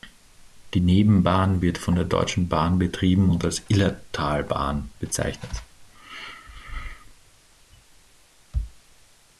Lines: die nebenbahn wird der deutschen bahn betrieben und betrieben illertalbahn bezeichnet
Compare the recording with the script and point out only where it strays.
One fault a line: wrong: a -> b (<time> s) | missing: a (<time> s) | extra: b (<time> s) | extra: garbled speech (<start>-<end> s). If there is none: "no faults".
extra: von (1.8 s)
wrong: betrieben -> als (3.4 s)